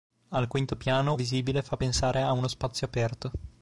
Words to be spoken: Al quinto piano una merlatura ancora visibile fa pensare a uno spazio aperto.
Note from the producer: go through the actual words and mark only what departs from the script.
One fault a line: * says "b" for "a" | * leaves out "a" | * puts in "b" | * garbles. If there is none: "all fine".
* leaves out "una merlatura ancora"